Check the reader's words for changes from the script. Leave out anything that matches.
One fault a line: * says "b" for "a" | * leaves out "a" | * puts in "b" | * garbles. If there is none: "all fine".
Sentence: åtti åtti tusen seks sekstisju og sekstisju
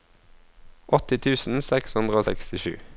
* leaves out "åtti"
* says "hundre" for "sekstisju"